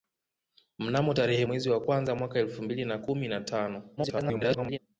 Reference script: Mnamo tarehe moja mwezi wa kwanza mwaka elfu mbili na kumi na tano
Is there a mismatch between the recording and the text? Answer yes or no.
yes